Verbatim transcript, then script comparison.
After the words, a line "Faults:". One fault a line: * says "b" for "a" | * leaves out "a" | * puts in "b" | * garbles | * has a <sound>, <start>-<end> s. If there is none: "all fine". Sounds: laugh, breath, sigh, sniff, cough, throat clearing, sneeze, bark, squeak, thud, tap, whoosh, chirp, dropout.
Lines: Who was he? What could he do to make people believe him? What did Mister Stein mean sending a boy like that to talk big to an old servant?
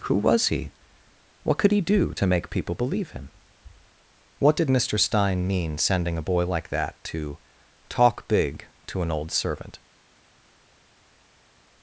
Who was he? What could he do to make people believe him? What did Mister Stein mean sending a boy like that to talk big to an old servant?
Faults:
all fine